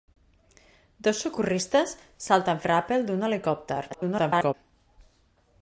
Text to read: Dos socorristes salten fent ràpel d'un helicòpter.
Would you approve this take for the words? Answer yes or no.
no